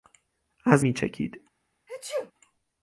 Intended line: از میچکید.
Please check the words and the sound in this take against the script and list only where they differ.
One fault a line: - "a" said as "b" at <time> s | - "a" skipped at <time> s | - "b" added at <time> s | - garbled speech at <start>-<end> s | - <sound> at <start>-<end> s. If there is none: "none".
- sneeze at 1.9-2.3 s